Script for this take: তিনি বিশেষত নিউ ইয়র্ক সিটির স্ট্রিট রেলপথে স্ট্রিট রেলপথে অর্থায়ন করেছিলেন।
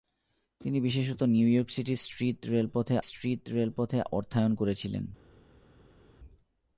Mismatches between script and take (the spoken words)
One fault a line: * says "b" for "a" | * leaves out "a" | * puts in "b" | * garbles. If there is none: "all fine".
all fine